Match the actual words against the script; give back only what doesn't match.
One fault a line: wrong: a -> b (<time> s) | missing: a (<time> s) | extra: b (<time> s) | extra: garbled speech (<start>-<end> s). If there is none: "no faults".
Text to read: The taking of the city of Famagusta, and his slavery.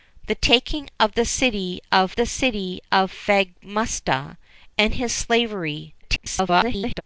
extra: the city of (2.1 s)
extra: garbled speech (6.0-7.0 s)